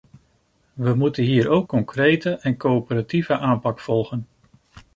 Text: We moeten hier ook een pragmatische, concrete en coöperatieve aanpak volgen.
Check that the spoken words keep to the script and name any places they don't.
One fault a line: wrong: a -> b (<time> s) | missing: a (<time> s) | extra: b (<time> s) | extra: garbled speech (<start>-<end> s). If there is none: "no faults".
missing: een pragmatische (1.7 s)